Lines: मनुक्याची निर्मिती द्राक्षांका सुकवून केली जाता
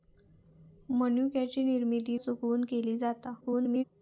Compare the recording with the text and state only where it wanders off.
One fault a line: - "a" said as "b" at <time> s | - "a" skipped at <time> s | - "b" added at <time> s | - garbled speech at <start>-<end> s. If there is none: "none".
- "द्राक्षांका" skipped at 2.2 s
- garbled speech at 3.4-3.8 s